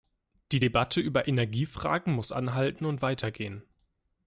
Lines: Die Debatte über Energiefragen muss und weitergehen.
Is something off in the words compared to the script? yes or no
yes